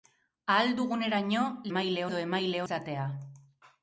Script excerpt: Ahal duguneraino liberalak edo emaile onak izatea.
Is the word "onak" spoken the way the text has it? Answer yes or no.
no